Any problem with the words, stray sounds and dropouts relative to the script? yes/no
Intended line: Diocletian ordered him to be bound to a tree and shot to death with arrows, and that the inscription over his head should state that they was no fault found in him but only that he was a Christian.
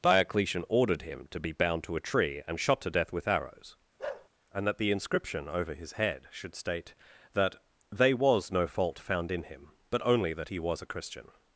yes